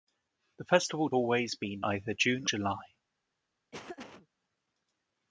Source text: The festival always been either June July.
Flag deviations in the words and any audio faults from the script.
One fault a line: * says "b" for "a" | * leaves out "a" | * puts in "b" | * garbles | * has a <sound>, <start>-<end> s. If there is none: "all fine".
* has a laugh, 3.7-4.3 s